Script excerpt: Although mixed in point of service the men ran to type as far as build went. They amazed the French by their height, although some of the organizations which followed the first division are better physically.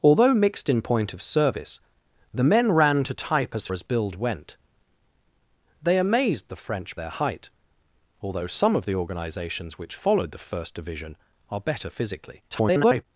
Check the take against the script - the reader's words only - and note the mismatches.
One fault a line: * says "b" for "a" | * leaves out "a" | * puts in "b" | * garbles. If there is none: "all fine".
* leaves out "far"
* leaves out "by"
* garbles